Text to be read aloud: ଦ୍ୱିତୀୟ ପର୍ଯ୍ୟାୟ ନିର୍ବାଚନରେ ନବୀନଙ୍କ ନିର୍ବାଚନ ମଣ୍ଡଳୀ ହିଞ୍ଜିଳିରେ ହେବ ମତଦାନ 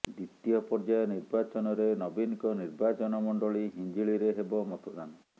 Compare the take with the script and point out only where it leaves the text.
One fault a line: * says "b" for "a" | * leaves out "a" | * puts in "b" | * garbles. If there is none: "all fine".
all fine